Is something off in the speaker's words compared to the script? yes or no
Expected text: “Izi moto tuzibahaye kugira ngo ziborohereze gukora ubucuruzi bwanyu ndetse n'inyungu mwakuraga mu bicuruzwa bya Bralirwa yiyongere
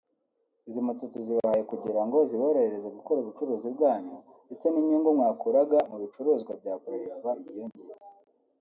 no